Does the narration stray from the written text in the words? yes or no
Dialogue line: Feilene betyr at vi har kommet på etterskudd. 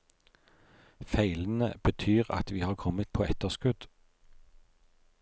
no